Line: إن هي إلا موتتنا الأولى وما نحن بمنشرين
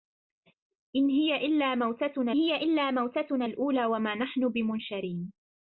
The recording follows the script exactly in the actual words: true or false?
false